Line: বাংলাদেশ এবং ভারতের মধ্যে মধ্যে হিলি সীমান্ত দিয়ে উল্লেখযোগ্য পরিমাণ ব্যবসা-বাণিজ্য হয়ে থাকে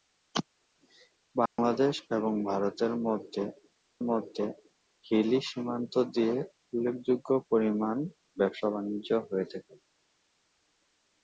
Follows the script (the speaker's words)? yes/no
yes